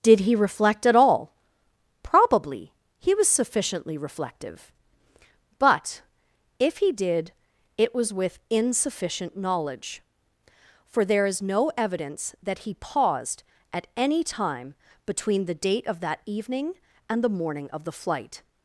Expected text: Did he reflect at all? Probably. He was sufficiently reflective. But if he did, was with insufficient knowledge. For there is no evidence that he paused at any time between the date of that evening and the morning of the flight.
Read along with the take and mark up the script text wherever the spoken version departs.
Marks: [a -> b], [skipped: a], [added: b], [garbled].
Did he reflect at all? Probably. He was sufficiently reflective. But if he did, [added: it] was with insufficient knowledge. For there is no evidence that he paused at any time between the date of that evening and the morning of the flight.